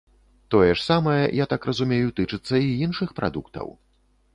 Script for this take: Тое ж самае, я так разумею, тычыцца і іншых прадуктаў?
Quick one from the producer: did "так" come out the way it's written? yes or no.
yes